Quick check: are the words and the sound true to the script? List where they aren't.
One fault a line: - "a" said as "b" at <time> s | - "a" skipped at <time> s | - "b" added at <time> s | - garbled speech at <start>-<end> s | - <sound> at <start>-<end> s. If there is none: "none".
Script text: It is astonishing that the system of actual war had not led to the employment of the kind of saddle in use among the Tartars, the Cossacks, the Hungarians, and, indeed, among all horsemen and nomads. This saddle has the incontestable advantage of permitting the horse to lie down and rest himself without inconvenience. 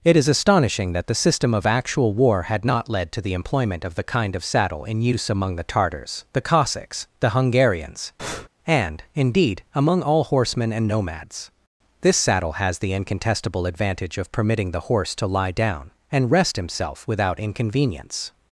- breath at 8.2-8.5 s